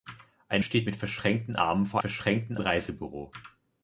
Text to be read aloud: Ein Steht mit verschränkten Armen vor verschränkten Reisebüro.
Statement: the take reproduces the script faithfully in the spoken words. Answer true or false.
true